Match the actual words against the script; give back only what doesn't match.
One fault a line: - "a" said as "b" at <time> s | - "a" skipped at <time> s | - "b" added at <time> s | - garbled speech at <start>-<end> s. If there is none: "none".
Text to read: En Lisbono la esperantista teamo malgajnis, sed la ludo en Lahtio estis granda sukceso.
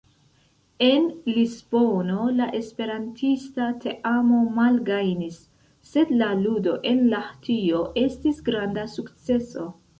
none